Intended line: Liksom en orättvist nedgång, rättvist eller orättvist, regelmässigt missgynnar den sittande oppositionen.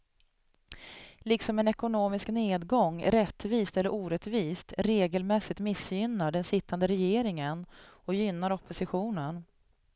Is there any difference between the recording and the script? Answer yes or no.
yes